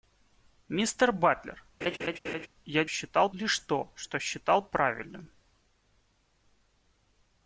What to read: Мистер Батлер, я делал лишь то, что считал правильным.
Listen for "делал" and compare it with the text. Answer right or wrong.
wrong